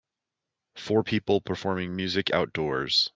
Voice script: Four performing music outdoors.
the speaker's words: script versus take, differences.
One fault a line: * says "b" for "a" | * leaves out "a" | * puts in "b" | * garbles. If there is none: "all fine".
* puts in "people"